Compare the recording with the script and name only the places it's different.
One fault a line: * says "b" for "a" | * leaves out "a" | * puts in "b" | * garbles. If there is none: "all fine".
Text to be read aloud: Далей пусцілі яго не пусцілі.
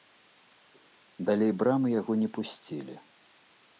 * says "брамы" for "пусцілі"